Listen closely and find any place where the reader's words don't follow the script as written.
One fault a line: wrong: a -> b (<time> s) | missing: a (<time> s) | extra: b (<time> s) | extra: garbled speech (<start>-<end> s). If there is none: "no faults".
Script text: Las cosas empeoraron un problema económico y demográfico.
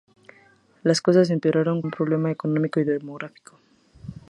no faults